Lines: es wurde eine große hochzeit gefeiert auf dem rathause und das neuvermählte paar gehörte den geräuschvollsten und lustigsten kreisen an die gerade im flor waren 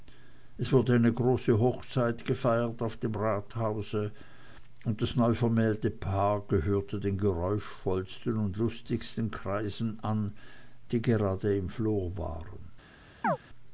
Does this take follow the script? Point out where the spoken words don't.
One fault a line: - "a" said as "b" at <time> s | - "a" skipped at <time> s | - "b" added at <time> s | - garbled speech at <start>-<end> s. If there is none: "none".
none